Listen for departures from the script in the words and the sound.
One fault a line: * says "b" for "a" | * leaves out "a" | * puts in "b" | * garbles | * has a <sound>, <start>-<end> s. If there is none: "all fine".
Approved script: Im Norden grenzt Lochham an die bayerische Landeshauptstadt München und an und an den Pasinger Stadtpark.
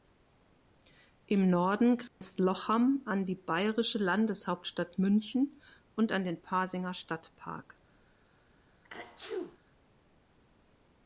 * has a dropout, 2.1-2.2 s
* leaves out "und an"
* has a sneeze, 8.8-9.6 s